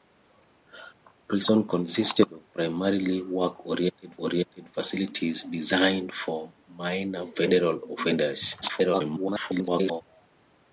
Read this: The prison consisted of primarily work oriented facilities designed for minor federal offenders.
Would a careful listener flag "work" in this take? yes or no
no